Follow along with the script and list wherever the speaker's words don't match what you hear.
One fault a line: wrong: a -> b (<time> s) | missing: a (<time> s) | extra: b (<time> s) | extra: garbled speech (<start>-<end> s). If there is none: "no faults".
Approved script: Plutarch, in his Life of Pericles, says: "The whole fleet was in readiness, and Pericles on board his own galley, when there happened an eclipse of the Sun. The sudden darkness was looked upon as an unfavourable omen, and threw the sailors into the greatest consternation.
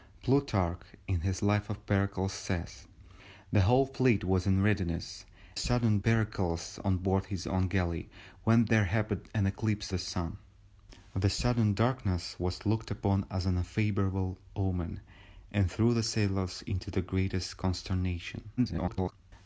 wrong: and -> sudden (5.6 s)
missing: of (9.9 s)
extra: garbled speech (18.6-19.1 s)